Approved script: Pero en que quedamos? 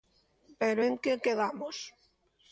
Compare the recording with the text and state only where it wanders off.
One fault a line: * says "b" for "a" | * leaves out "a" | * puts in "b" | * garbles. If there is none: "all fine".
all fine